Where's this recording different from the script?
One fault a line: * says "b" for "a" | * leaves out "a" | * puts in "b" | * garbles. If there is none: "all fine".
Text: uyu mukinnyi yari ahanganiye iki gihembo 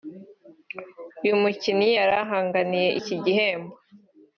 all fine